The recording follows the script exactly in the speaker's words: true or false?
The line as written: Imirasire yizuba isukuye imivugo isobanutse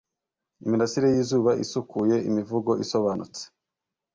true